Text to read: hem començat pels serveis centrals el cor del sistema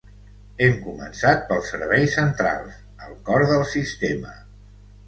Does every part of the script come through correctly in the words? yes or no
yes